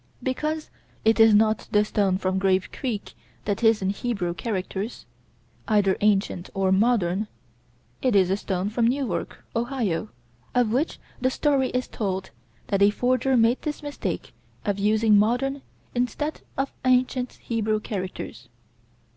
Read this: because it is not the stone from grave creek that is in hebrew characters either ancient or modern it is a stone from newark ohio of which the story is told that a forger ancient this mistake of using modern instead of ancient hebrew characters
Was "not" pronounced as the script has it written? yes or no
yes